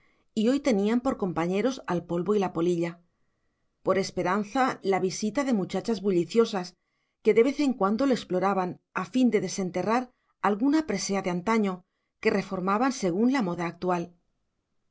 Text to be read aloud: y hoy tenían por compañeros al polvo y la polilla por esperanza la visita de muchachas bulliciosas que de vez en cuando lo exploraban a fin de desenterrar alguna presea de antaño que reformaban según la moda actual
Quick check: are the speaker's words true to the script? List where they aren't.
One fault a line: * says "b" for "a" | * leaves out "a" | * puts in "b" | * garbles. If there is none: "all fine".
all fine